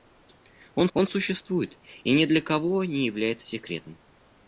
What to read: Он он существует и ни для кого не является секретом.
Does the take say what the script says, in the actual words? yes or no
yes